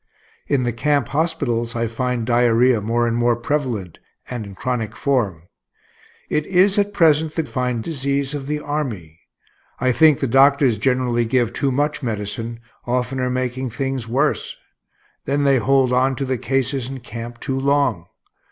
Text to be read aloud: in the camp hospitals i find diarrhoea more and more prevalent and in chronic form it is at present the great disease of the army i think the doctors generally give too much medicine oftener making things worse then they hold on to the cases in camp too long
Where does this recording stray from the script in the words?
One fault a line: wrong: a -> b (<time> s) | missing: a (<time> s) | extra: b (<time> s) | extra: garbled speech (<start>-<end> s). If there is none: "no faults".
wrong: great -> find (7.4 s)